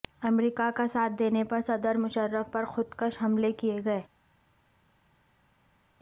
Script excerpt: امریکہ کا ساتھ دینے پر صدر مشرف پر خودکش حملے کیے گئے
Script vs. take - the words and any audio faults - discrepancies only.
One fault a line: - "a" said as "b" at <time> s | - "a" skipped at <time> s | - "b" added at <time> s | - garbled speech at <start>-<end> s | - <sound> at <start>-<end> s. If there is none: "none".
none